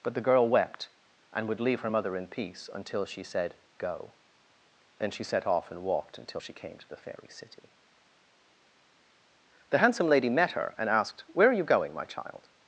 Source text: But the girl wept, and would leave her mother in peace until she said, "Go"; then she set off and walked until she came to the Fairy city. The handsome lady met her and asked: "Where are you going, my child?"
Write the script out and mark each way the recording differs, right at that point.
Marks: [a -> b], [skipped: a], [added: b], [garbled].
But the girl wept, and would leave her mother in peace until she said, "Go"; then she set off and walked until she came to the Fairy city. The handsome lady met her and asked: "Where are you going, my child?"